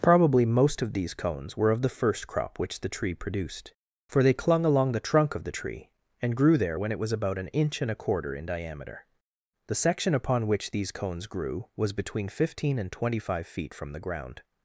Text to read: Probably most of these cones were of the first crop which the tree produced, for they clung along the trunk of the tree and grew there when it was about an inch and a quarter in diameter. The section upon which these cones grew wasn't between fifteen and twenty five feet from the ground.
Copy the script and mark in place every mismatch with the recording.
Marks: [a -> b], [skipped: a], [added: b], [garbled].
Probably most of these cones were of the first crop which the tree produced, for they clung along the trunk of the tree and grew there when it was about an inch and a quarter in diameter. The section upon which these cones grew [wasn't -> was] between fifteen and twenty five feet from the ground.